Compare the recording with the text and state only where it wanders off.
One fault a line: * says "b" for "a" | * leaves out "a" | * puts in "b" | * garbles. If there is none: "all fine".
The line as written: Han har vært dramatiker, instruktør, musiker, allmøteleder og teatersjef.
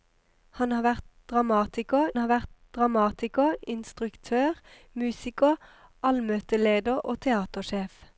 * puts in "har vært dramatiker"